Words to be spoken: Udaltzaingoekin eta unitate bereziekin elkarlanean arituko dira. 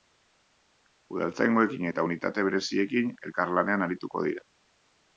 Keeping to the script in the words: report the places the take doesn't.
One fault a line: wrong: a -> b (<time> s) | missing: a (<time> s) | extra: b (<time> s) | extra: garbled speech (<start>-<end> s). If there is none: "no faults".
no faults